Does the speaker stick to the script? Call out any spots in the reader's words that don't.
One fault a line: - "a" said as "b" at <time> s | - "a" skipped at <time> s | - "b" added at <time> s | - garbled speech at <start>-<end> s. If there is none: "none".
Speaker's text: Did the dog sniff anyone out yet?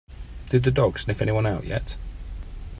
none